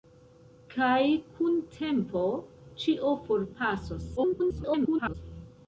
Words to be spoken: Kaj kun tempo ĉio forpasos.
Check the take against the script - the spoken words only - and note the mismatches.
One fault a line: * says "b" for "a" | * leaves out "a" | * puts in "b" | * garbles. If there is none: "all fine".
* garbles